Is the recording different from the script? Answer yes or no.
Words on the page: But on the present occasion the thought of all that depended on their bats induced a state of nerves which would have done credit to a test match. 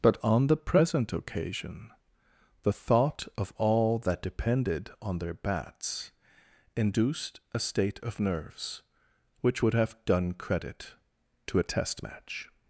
no